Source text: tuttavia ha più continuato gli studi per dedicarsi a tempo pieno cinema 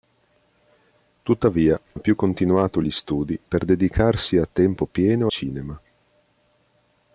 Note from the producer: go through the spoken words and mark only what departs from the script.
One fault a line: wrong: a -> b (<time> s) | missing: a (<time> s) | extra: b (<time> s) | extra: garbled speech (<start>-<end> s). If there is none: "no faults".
no faults